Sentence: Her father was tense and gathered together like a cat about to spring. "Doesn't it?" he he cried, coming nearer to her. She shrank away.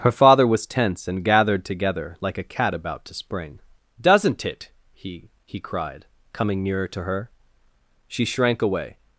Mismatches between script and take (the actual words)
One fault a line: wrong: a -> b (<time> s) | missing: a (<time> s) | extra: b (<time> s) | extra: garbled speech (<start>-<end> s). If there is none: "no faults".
no faults